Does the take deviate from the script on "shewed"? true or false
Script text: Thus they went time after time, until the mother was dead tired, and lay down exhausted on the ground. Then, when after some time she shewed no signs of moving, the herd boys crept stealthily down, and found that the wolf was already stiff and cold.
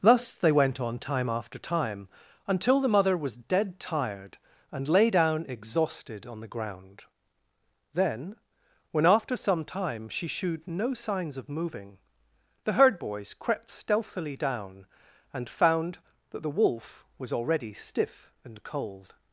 false